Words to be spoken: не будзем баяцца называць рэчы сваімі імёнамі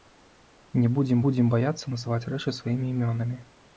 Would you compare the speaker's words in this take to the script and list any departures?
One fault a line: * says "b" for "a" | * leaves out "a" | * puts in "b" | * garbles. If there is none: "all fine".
* puts in "будзем"